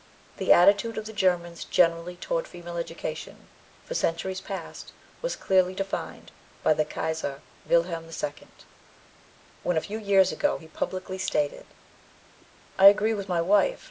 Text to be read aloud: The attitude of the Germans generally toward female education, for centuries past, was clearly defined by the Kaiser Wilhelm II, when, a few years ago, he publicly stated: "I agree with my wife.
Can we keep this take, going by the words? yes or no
yes